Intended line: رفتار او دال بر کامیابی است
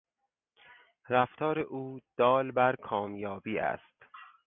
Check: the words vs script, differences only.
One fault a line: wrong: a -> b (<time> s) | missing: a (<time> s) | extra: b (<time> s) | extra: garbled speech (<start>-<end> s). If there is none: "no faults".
no faults